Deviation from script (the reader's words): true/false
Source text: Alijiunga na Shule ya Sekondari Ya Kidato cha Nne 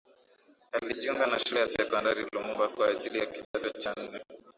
true